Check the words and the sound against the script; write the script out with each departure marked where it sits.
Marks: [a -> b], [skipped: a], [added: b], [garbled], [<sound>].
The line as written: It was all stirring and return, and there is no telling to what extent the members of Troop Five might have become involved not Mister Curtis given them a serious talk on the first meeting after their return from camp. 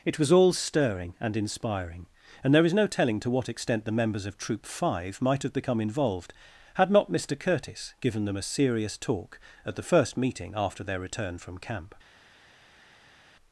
It was all stirring and [return, -> inspiring] and there is no telling to what extent the members of Troop Five might have become involved [added: had] not Mister Curtis given them a serious talk [on -> at] the first meeting after their return from camp.